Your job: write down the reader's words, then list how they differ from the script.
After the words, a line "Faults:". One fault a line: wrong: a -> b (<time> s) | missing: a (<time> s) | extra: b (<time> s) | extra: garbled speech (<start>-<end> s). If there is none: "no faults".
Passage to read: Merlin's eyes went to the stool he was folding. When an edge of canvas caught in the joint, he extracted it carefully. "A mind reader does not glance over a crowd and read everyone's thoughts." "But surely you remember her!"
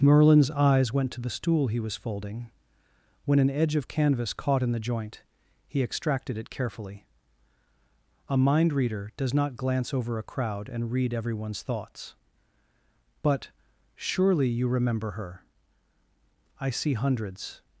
Merlin's eyes went to the stool he was folding. When an edge of canvas caught in the joint, he extracted it carefully. "A mind reader does not glance over a crowd and read everyone's thoughts." "But surely you remember her!" "I see hundreds
Faults:
extra: I see hundreds (16.6 s)